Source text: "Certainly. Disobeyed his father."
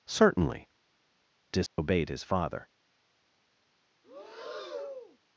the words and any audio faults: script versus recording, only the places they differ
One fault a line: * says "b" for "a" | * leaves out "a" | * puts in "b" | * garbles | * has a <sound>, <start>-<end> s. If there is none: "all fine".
* has a dropout, 1.7-1.8 s
* has a breath, 4.0-5.2 s